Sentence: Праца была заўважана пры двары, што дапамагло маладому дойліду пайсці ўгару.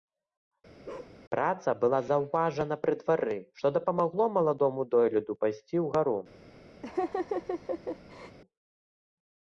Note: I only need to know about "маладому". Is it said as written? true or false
true